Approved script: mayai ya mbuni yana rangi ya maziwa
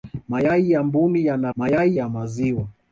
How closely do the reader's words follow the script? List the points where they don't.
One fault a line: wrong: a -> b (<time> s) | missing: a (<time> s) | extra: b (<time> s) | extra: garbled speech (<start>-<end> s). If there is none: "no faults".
wrong: rangi -> mayai (1.5 s)